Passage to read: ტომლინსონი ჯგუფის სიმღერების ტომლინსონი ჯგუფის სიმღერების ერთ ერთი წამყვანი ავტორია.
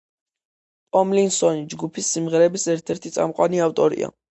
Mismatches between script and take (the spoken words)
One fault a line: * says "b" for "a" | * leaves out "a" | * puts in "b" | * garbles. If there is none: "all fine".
* leaves out "ტომლინსონი ჯგუფის სიმღერების"